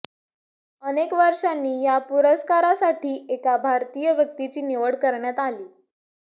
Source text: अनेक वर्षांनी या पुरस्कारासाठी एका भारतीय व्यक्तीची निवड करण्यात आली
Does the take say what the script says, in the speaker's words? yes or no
yes